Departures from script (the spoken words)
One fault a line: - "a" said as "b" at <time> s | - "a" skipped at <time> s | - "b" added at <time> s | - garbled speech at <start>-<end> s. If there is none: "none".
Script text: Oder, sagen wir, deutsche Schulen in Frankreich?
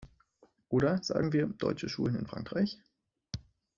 none